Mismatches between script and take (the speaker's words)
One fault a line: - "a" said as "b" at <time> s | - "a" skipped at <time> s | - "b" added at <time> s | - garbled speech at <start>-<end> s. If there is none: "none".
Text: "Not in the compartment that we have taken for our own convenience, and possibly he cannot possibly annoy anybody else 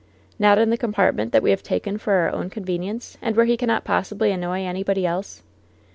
- "possibly" said as "where" at 3.4 s